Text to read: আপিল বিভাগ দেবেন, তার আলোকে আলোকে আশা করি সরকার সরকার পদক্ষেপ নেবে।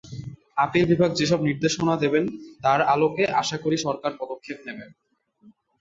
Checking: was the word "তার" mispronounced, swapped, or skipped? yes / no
no